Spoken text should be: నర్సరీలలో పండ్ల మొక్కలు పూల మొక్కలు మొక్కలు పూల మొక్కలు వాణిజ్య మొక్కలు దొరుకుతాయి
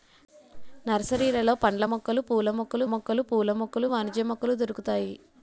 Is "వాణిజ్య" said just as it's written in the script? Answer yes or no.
yes